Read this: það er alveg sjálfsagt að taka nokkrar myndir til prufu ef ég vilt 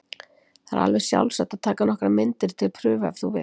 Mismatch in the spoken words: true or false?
true